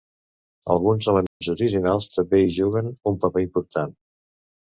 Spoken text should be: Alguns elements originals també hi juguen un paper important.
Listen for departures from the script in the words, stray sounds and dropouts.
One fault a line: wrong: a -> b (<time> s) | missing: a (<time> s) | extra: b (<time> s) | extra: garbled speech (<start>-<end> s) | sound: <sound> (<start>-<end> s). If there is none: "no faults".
sound: dropout (1.3-1.4 s)